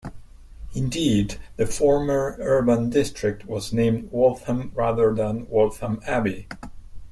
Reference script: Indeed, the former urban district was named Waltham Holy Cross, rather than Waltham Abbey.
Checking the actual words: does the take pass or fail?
fail